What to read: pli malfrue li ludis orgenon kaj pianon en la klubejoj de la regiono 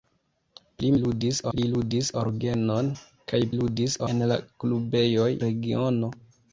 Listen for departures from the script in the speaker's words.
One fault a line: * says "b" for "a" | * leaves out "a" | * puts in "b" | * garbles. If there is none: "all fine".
* says "ludis" for "malfrue"
* says "ludis" for "pianon"
* leaves out "de la"